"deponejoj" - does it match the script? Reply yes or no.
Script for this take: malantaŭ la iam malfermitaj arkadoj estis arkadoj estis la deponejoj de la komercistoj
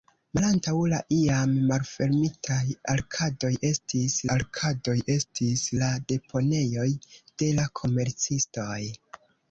yes